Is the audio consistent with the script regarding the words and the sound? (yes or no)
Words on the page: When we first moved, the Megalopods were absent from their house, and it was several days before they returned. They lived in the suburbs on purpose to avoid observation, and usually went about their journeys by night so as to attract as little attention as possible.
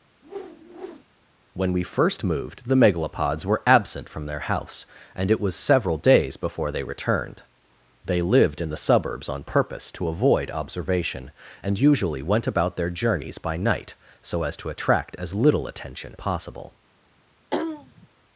no